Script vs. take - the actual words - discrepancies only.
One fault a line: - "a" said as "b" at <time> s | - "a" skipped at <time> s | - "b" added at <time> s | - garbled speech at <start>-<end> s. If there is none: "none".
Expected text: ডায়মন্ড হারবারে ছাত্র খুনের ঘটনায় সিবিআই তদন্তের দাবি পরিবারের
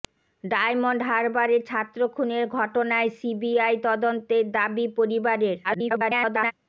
- garbled speech at 5.6-6.5 s